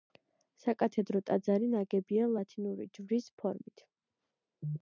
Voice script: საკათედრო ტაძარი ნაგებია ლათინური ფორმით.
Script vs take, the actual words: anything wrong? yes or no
yes